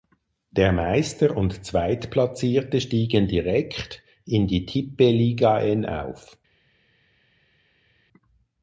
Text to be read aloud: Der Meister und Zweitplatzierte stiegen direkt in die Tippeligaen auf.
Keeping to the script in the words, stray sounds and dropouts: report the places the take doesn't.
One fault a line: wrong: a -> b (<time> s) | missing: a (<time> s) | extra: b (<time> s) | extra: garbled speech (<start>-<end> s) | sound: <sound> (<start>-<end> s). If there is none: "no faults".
no faults